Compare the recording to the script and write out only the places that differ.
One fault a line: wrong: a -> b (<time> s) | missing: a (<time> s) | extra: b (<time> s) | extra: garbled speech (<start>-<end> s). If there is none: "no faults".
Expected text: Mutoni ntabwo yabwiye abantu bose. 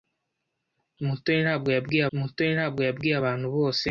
extra: mutoni ntabwo yabwiye (2.2 s)